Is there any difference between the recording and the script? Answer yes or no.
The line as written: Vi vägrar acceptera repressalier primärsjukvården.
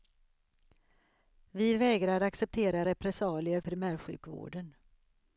no